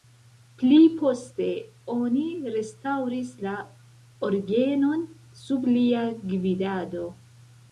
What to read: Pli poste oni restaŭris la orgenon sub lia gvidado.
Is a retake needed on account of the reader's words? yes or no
no